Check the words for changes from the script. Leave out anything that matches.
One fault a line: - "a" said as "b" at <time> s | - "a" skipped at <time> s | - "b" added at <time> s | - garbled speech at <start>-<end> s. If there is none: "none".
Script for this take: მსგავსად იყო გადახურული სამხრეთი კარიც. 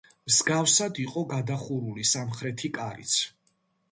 none